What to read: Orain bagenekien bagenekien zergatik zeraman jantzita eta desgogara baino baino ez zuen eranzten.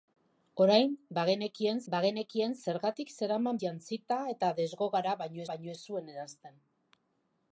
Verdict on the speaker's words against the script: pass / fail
pass